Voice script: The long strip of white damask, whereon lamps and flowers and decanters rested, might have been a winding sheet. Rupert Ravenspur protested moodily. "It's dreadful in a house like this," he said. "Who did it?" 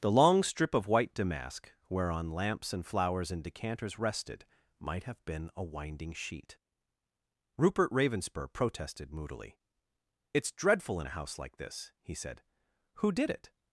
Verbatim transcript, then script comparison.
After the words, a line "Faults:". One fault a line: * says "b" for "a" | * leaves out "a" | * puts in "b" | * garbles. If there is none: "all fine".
The long strip of white damask, whereon lamps and flowers and decanters rested, might have been a winding sheet. Rupert Ravenspur protested moodily. "It's dreadful in a house like this," he said. "Who did it?"
Faults:
all fine